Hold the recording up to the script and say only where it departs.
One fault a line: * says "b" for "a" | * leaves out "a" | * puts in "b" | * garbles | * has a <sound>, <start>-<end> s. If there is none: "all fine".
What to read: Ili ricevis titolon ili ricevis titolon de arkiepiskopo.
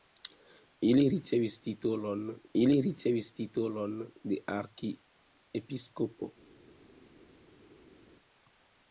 all fine